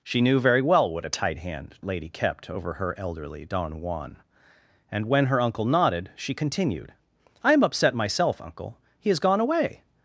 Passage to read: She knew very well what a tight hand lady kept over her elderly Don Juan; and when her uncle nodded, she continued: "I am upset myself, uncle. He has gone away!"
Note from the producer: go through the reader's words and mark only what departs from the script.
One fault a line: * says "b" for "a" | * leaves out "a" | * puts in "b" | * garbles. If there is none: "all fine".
all fine